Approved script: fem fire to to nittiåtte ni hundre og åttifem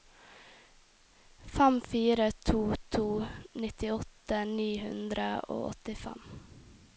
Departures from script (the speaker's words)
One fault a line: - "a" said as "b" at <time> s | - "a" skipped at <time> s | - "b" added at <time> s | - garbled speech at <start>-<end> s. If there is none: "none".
none